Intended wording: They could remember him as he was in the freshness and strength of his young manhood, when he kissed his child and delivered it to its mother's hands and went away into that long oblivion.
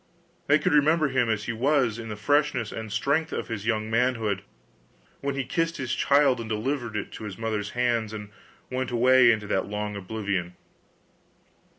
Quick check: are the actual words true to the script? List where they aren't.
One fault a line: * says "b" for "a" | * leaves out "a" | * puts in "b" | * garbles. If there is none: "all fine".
all fine